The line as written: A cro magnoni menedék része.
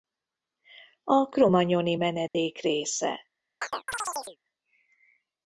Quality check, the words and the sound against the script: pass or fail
fail